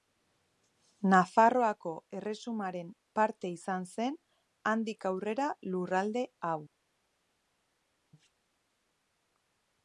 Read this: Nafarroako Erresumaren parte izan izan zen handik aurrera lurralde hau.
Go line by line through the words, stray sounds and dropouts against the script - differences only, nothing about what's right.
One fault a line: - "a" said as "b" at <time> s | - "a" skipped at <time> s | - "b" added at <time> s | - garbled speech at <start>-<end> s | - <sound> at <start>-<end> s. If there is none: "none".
- "izan" skipped at 3.9 s